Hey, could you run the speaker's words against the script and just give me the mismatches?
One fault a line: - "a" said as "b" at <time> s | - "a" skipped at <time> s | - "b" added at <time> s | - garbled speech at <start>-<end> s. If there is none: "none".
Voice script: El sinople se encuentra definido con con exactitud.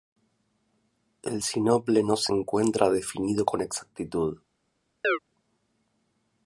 - "no" added at 2.0 s
- "con" skipped at 3.6 s